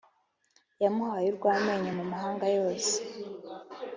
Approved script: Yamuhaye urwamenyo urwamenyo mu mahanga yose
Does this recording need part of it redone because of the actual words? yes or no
yes